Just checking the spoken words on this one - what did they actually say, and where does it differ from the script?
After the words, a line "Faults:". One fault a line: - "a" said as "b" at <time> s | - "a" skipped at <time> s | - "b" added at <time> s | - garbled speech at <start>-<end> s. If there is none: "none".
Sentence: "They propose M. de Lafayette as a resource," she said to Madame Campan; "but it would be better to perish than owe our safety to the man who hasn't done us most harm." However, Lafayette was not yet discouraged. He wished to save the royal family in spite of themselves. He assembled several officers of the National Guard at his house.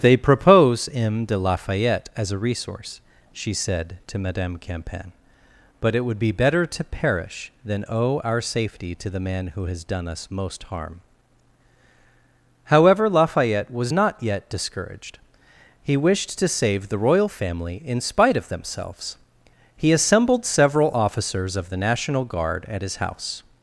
"They propose M. de Lafayette as a resource," she said to Madame Campan; "but it would be better to perish than owe our safety to the man who has done us most harm." However, Lafayette was not yet discouraged. He wished to save the royal family in spite of themselves. He assembled several officers of the National Guard at his house.
Faults:
- "hasn't" said as "has" at 9.7 s